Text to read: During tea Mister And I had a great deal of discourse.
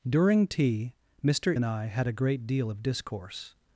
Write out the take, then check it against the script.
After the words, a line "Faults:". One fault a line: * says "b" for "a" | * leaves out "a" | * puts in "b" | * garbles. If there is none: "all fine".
During tea Mister And I had a great deal of discourse.
Faults:
all fine